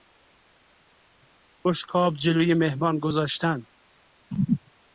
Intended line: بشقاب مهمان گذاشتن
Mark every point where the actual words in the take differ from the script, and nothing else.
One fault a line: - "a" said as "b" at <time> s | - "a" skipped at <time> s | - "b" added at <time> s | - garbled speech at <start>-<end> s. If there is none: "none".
- "جلو" added at 2.1 s